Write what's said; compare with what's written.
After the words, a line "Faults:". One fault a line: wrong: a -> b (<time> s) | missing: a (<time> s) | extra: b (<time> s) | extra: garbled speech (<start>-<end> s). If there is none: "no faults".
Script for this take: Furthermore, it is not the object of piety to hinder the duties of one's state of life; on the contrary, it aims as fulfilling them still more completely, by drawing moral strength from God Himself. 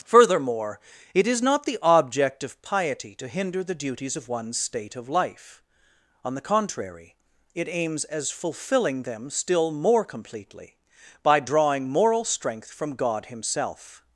Furthermore, it is not the object of piety to hinder the duties of one's state of life; on the contrary, it aims as fulfilling them still more completely, by drawing moral strength from God Himself.
Faults:
no faults